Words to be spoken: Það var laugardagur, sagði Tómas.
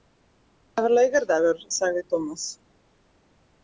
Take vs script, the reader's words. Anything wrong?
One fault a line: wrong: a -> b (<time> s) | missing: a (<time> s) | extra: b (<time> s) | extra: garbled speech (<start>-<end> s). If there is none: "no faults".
no faults